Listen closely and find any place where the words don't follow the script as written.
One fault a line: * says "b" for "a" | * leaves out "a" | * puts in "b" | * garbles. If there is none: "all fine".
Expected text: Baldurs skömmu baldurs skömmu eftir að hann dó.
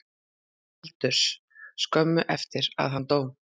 * leaves out "baldurs skömmu"